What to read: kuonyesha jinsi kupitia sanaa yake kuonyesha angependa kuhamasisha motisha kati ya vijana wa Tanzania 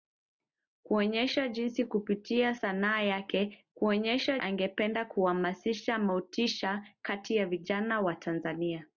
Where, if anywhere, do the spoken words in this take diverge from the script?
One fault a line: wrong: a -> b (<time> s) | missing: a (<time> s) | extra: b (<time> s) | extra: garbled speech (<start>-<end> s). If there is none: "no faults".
no faults